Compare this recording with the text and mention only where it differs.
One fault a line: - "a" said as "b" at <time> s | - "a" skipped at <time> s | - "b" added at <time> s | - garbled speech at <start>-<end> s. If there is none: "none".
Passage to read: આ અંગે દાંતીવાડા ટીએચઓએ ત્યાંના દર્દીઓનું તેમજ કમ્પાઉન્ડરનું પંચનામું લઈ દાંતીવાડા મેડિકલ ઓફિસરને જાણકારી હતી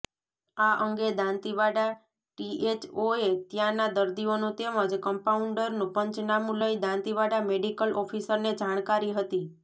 none